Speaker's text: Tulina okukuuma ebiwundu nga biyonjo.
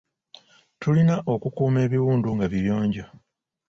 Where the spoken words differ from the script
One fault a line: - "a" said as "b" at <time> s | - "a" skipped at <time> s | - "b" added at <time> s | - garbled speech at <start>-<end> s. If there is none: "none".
none